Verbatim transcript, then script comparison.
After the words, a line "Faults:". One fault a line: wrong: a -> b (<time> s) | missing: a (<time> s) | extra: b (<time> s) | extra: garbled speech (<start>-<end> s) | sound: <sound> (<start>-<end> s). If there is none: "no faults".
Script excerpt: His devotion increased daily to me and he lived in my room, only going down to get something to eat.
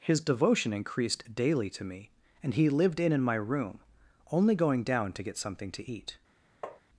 His devotion increased daily to me and he lived in in my room, only going down to get something to eat.
Faults:
extra: in (3.1 s)
sound: tap (6.6-6.8 s)